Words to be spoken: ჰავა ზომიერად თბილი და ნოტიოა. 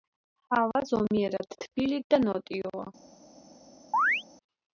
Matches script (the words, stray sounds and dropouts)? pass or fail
fail